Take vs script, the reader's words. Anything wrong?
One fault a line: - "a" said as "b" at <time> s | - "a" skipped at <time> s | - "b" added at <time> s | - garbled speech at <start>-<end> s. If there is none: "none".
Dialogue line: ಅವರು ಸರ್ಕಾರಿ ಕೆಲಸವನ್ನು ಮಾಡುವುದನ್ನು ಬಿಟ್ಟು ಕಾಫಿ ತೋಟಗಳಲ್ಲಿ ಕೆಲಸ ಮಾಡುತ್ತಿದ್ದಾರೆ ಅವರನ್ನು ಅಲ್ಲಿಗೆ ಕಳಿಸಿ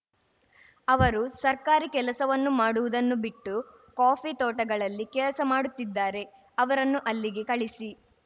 none